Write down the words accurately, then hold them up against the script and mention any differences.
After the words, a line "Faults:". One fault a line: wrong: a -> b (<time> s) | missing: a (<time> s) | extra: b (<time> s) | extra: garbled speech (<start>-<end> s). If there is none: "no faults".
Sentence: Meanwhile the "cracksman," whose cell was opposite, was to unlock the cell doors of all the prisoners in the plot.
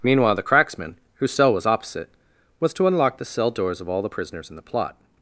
Meanwhile the "cracksman," whose cell was opposite, was to unlock the cell doors of all the prisoners in the plot.
Faults:
no faults